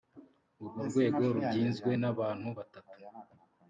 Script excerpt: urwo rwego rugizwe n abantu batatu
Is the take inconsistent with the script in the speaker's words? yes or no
no